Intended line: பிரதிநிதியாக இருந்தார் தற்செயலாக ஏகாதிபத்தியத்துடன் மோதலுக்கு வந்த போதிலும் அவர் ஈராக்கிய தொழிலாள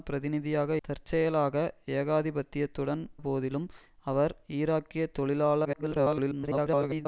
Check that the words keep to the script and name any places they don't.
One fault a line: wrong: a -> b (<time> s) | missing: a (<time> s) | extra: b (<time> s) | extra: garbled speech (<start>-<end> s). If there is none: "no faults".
missing: இருந்தார் (0.8 s)
missing: மோதலுக்கு வந்த (3.0 s)
extra: garbled speech (5.6-7.1 s)